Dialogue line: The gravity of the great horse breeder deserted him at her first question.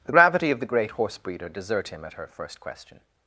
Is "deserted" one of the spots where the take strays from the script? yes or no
yes